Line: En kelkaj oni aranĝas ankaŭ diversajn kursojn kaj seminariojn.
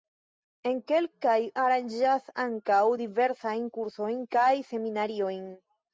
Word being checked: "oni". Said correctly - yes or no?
no